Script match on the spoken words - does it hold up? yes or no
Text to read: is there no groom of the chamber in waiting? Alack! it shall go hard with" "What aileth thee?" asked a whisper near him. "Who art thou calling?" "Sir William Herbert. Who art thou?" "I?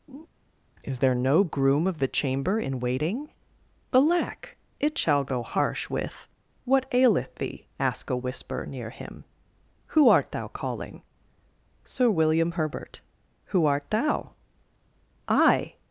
no